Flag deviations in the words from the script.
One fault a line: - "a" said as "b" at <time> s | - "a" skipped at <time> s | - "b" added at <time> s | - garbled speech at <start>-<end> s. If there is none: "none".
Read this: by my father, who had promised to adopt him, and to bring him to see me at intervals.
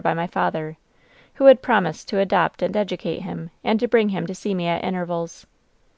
- "and educate" added at 2.6 s